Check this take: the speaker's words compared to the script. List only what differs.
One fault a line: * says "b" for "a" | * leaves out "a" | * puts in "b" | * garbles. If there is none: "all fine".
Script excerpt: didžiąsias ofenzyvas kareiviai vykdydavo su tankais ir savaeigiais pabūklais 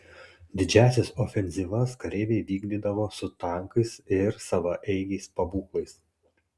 all fine